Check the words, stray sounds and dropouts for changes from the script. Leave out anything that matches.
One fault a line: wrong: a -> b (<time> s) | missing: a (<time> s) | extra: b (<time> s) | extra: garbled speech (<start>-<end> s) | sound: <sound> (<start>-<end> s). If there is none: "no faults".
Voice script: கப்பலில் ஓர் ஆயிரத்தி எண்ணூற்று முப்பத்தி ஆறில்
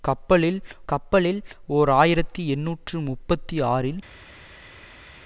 extra: கப்பலில் (0.9 s)